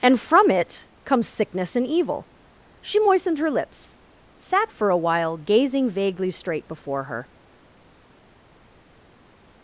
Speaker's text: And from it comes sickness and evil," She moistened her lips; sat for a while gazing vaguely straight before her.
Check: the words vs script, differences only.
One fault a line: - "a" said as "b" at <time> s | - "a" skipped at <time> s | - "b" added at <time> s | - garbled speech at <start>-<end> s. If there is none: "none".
none